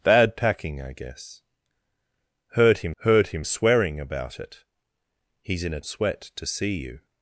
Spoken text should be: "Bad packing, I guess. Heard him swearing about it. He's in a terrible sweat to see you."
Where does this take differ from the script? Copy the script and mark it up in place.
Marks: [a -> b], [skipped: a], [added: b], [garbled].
"Bad packing, I guess. Heard him [added: heard him] swearing about it. He's in a [skipped: terrible] sweat to see you."